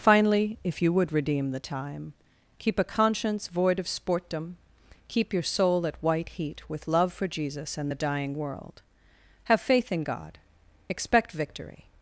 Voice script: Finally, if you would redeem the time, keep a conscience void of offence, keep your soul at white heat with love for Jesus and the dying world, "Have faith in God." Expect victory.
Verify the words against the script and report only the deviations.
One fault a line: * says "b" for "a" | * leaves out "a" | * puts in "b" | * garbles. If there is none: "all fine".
* says "sportdom" for "offence"